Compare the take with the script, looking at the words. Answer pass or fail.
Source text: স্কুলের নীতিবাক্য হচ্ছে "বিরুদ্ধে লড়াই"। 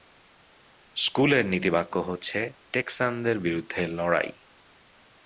fail